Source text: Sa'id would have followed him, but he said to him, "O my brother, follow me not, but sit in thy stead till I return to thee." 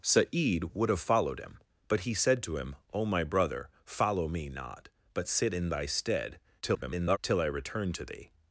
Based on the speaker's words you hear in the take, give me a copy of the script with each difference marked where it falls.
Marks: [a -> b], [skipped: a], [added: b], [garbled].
Sa'id would have followed him, but he said to him, "O my brother, follow me not, but sit in thy stead [garbled] till I return to thee."